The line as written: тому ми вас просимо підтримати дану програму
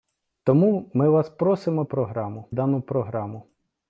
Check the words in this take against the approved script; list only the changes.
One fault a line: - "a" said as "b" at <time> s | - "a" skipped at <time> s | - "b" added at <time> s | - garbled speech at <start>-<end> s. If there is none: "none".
- "підтримати" said as "програму" at 1.8 s